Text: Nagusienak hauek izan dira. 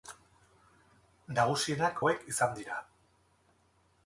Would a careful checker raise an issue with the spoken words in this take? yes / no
no